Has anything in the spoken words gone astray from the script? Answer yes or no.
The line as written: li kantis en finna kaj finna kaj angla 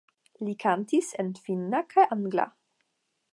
yes